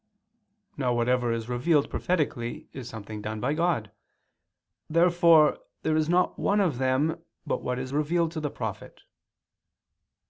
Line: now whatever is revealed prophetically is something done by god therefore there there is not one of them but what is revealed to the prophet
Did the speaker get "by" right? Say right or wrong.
right